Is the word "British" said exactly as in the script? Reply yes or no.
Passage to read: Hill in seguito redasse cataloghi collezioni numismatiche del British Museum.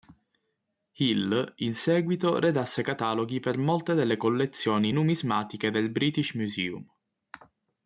yes